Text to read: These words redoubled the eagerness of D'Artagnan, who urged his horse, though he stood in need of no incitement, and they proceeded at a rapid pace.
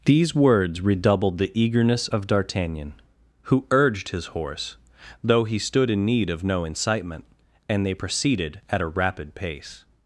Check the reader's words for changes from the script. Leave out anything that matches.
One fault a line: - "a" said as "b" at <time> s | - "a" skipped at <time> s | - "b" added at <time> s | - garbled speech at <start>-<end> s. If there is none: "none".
none